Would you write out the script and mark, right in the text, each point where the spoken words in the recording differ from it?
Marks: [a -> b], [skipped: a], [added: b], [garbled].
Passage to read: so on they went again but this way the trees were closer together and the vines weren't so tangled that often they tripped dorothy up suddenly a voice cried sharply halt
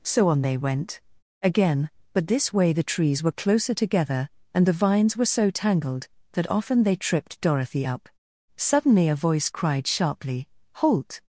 so on they went again but this way the trees were closer together and the vines [weren't -> were] so tangled that often they tripped dorothy up suddenly a voice cried sharply halt